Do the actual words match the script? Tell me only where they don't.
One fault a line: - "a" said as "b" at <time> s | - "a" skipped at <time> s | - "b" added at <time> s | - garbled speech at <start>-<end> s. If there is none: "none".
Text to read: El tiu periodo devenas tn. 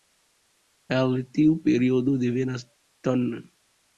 none